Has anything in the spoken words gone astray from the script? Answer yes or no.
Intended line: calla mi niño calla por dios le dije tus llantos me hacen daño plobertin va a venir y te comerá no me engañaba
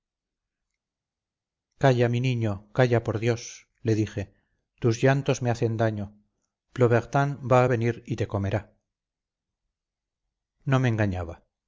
no